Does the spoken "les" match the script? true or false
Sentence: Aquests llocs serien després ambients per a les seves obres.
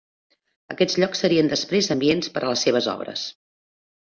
true